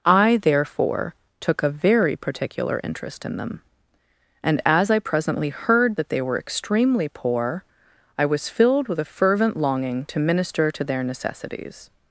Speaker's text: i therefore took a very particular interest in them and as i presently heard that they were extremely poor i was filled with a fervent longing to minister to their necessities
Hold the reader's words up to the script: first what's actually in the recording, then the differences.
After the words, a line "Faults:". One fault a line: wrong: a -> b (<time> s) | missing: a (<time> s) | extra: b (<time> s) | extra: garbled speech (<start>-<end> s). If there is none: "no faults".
i therefore took a very particular interest in them and as i presently heard that they were extremely poor i was filled with a fervent longing to minister to their necessities
Faults:
no faults